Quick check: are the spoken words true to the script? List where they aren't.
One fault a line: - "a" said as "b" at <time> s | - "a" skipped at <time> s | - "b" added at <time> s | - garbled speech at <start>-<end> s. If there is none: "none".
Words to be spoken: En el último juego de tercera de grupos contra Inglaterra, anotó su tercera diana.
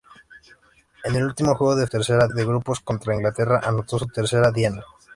none